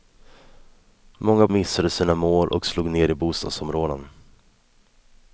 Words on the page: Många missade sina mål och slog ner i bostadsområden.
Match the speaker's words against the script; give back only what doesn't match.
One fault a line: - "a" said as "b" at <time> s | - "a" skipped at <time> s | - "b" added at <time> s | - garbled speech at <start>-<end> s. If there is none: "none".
none